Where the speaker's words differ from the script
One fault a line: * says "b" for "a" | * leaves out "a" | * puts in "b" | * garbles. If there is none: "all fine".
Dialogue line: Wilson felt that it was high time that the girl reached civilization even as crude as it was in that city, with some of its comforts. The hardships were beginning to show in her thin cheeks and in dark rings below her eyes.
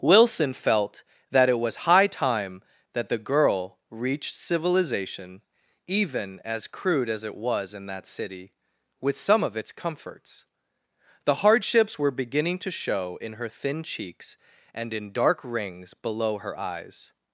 all fine